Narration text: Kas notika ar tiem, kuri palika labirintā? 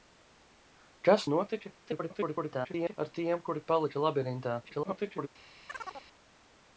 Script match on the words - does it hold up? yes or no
no